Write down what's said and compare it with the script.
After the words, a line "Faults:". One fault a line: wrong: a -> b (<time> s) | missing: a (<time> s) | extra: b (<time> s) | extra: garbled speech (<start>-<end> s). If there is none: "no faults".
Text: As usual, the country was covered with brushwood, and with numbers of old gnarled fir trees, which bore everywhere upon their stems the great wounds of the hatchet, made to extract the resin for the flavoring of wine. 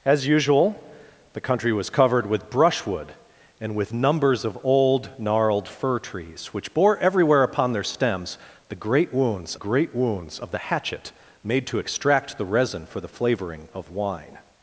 As usual, the country was covered with brushwood, and with numbers of old gnarled fir trees, which bore everywhere upon their stems the great wounds great wounds of the hatchet, made to extract the resin for the flavoring of wine.
Faults:
extra: great wounds (9.5 s)